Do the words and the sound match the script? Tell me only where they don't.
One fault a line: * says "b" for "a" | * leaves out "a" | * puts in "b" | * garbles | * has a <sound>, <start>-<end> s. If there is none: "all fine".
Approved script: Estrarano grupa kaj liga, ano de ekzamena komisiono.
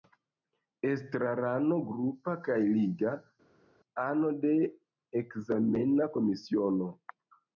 all fine